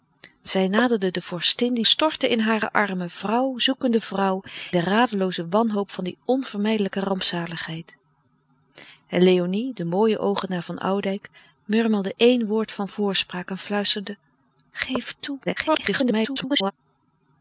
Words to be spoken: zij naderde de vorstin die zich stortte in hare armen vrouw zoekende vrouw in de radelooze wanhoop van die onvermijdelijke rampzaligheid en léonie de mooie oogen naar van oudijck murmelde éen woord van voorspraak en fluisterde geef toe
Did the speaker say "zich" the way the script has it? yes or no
no